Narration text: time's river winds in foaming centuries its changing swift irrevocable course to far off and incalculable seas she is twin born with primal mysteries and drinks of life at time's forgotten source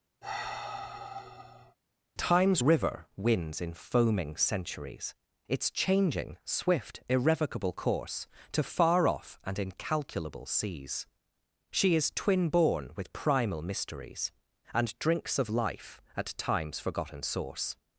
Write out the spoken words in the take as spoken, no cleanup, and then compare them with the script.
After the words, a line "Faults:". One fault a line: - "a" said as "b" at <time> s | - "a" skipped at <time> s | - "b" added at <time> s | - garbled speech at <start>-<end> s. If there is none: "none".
time's river winds in foaming centuries its changing swift irrevocable course to far off and incalculable seas she is twin born with primal mysteries and drinks of life at time's forgotten source
Faults:
none